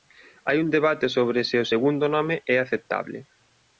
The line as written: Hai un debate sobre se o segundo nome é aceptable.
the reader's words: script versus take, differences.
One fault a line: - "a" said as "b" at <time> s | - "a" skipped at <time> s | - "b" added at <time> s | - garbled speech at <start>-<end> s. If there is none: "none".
none